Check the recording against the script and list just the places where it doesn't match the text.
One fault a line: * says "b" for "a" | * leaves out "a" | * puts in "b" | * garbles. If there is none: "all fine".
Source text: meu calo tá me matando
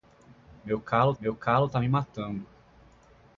* puts in "meu calo"